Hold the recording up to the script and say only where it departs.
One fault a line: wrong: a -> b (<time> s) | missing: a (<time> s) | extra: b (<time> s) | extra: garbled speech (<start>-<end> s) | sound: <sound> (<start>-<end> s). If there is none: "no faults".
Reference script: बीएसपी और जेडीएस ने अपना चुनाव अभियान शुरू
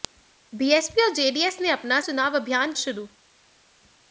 no faults